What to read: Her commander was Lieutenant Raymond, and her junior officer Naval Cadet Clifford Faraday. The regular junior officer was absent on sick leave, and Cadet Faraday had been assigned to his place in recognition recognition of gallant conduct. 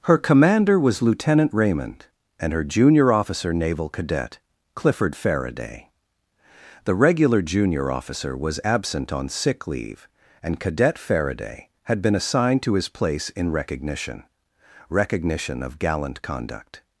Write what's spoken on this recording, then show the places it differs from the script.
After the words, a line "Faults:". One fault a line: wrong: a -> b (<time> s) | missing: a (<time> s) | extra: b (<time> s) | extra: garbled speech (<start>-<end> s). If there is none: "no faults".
Her commander was Lieutenant Raymond, and her junior officer Naval Cadet Clifford Faraday. The regular junior officer was absent on sick leave, and Cadet Faraday had been assigned to his place in recognition recognition of gallant conduct.
Faults:
no faults